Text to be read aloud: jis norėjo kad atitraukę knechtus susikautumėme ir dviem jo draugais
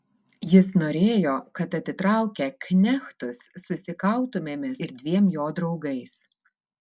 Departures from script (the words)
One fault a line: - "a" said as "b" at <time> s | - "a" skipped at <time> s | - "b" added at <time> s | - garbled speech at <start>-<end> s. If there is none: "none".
none